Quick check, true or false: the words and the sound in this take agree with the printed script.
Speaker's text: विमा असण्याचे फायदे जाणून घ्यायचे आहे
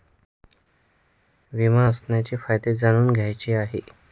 true